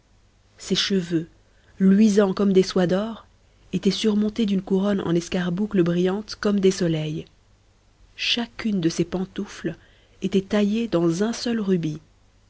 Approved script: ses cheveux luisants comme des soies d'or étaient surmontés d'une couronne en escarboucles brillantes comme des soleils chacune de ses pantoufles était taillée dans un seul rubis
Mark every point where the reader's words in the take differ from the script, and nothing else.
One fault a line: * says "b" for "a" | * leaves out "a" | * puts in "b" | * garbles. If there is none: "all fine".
all fine